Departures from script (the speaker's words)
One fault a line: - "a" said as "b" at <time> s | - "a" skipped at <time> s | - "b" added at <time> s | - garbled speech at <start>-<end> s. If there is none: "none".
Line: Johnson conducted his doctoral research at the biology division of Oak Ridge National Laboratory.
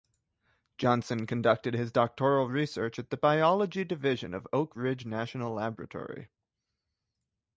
none